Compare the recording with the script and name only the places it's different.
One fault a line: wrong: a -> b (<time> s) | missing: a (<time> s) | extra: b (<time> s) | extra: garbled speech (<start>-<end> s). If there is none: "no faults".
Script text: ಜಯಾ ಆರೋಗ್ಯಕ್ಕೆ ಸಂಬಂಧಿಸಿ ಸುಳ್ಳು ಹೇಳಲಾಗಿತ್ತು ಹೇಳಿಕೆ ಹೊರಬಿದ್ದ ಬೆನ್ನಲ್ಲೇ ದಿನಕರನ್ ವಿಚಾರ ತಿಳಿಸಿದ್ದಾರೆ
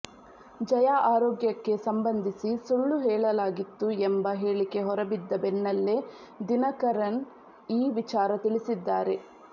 extra: ಎಂಬ (4.1 s)
extra: ಈ (7.7 s)